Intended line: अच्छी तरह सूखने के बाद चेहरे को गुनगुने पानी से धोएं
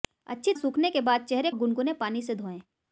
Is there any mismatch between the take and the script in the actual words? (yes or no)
yes